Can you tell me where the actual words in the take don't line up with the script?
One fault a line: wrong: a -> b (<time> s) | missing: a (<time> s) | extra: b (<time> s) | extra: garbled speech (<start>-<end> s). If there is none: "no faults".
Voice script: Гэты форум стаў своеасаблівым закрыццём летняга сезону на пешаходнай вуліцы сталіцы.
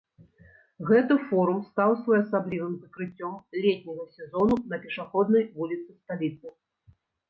no faults